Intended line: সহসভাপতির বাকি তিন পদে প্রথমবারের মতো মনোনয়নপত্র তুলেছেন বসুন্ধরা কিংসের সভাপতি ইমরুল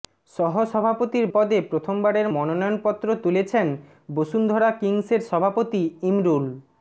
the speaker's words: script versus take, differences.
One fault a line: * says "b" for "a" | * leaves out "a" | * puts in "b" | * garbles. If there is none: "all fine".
* leaves out "বাকি তিন"
* leaves out "মতো"